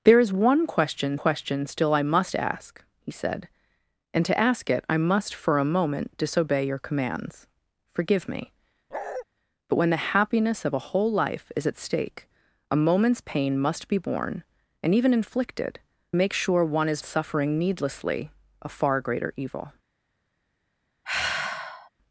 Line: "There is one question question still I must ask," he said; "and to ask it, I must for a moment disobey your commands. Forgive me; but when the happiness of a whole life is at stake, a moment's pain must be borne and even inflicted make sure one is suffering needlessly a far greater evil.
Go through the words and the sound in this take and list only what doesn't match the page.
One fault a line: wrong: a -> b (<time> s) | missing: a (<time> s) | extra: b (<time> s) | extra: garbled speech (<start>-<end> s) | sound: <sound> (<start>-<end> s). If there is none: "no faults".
sound: bark (8.9-9.3 s)
sound: sigh (21.0-21.9 s)